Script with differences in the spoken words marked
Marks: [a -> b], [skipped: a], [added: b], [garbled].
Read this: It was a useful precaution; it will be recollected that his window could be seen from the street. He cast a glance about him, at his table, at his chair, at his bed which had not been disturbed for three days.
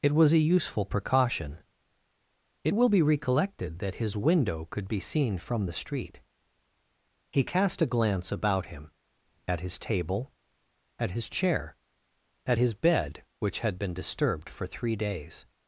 It was a useful precaution; it will be recollected that his window could be seen from the street. He cast a glance about him, at his table, at his chair, at his bed which had [skipped: not] been disturbed for three days.